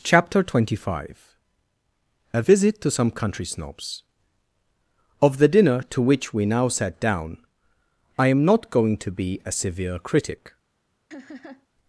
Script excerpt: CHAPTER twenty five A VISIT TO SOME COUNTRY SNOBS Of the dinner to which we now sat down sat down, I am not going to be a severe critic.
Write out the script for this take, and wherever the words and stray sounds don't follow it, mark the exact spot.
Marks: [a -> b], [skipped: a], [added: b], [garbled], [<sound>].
CHAPTER twenty five A VISIT TO SOME COUNTRY SNOBS Of the dinner to which we now sat down [skipped: sat down,] I am not going to be a severe critic. [laugh]